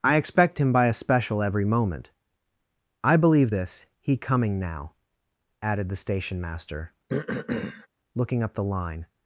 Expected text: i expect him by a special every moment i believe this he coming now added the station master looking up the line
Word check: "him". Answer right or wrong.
right